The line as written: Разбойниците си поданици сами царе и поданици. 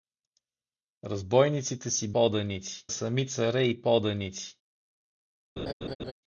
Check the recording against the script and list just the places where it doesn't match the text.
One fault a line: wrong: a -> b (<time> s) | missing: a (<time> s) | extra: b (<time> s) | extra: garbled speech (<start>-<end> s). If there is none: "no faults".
no faults